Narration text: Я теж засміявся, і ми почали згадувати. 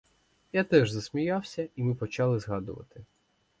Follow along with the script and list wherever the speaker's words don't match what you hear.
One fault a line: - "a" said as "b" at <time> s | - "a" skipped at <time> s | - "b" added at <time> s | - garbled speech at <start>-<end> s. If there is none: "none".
none